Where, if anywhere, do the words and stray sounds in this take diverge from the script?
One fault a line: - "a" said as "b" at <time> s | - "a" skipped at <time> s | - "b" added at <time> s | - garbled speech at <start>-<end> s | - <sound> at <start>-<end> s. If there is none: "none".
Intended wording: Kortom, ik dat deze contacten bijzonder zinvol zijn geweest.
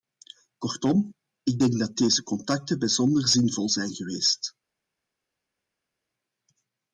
- "denk" added at 1.6 s